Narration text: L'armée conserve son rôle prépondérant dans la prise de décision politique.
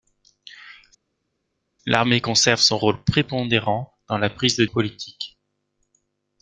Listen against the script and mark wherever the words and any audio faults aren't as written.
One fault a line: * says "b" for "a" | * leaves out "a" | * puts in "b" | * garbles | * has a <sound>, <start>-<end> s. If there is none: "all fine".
* leaves out "décision"